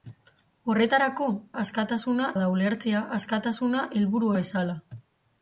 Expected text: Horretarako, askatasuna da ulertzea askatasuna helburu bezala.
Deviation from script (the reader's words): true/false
false